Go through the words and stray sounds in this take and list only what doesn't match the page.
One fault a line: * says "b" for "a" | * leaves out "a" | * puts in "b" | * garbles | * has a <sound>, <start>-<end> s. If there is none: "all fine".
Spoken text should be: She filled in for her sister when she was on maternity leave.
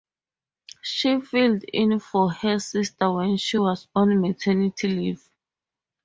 all fine